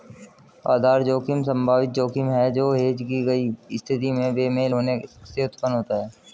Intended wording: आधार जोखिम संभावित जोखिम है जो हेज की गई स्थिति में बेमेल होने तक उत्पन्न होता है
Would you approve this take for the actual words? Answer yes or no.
no